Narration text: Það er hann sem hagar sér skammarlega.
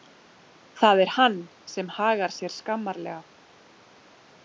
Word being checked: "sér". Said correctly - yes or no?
yes